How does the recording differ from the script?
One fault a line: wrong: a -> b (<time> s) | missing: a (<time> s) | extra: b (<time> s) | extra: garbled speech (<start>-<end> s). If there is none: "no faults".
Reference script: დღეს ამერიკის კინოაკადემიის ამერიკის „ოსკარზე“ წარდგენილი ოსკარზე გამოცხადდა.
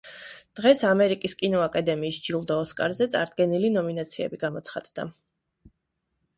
wrong: ამერიკის -> ჯილდო (2.3 s)
wrong: ოსკარზე -> ნომინაციები (3.8 s)